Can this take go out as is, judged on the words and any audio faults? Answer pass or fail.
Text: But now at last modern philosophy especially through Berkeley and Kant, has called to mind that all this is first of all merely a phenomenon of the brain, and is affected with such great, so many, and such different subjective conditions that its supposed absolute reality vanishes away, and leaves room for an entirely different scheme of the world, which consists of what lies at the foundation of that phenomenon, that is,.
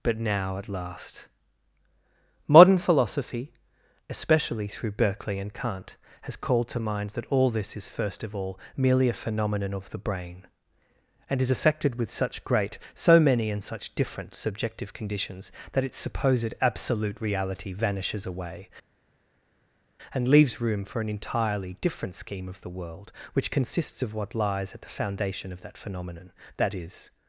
pass